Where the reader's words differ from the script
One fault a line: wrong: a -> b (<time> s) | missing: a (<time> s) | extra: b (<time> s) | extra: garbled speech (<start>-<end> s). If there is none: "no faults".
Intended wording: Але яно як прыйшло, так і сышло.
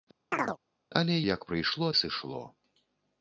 missing: яно (1.2 s)
missing: так (1.9 s)